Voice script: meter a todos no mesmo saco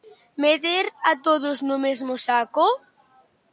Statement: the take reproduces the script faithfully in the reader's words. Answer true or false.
true